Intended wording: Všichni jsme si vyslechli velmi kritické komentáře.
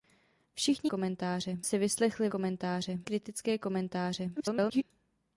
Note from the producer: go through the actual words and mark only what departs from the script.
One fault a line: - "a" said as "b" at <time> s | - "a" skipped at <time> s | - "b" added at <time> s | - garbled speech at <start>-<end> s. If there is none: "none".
- "jsme" said as "komentáře" at 0.8 s
- "velmi" said as "komentáře" at 2.3 s
- garbled speech at 4.4-4.8 s